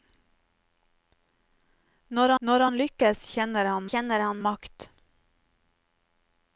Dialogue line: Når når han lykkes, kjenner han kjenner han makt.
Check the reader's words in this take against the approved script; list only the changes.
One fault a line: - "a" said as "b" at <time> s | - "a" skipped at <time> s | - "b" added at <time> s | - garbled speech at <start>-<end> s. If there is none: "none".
none